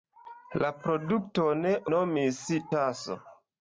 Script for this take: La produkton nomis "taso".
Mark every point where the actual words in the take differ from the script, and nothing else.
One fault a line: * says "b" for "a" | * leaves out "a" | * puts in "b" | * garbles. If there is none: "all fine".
all fine